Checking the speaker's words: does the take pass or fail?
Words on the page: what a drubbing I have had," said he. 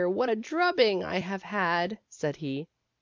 pass